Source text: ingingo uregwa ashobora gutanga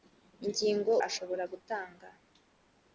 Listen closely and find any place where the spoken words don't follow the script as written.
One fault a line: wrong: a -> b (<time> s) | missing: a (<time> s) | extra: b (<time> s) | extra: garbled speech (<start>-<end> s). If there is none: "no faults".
missing: uregwa (0.9 s)